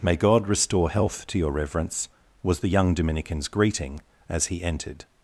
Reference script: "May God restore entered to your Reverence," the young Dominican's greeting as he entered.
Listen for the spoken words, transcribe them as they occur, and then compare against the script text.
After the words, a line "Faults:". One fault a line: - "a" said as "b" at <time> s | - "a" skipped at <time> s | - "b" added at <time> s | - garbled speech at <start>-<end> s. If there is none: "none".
"May God restore health to your Reverence," was the young Dominican's greeting as he entered.
Faults:
- "entered" said as "health" at 0.9 s
- "was" added at 2.4 s